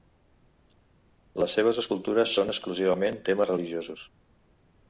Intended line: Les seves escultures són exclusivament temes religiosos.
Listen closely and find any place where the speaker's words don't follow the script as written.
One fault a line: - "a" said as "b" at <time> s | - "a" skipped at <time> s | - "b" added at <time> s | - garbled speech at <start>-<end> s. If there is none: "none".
none